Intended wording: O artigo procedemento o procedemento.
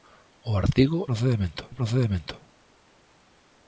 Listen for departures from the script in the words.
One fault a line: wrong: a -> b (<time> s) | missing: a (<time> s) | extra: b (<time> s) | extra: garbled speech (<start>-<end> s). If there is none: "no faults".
no faults